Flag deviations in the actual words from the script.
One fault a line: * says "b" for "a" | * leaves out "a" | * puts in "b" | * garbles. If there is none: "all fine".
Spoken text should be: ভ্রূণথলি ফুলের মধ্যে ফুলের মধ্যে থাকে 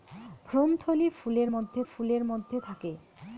all fine